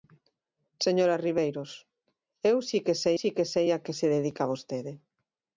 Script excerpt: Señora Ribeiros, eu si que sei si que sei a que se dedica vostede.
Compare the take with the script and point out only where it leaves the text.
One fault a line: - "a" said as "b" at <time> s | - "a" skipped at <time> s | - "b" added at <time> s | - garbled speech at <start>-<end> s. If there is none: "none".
none